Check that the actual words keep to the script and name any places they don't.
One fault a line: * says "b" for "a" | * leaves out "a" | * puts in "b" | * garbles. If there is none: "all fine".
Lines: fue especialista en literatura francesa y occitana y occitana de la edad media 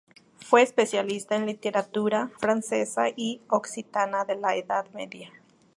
* leaves out "y occitana"